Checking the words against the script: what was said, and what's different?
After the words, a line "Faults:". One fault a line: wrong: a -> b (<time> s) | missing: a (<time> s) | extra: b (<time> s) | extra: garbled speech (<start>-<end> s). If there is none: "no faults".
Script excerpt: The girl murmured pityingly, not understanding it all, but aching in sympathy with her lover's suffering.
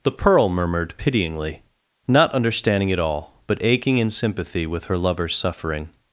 The pearl murmured pityingly, not understanding it all, but aching in sympathy with her lover's suffering.
Faults:
wrong: girl -> pearl (0.1 s)